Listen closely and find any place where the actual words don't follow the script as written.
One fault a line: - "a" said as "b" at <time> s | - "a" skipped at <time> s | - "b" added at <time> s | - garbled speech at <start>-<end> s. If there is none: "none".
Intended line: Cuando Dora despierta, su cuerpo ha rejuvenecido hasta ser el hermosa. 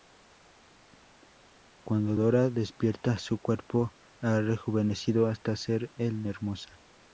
none